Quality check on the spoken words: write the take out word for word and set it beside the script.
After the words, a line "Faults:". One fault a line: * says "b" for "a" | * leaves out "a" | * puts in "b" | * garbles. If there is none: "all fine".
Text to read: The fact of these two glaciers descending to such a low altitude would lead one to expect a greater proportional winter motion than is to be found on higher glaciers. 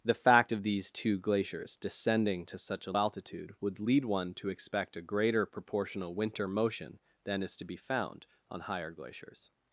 The fact of these two glaciers descending to such a altitude would lead one to expect a greater proportional winter motion than is to be found on higher glaciers.
Faults:
* leaves out "low"